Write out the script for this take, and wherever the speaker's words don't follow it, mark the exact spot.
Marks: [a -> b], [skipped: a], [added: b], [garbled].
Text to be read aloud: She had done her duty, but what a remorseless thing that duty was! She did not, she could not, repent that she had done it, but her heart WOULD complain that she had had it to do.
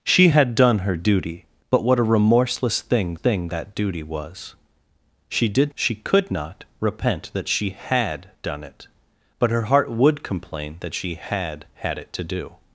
She had done her duty, but what a remorseless thing [added: thing] that duty was! She did [skipped: not,] she could not, repent that she had done it, but her heart WOULD complain that she had had it to do.